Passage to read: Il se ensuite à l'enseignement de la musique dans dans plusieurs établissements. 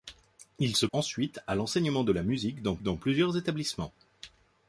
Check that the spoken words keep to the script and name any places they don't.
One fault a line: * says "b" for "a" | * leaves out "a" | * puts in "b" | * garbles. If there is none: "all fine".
all fine